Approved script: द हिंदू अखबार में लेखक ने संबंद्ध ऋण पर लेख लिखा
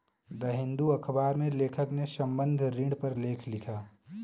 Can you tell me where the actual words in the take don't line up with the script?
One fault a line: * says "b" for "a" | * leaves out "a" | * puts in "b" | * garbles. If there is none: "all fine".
all fine